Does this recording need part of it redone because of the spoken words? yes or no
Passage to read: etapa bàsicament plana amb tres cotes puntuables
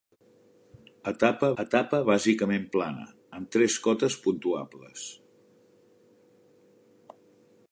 yes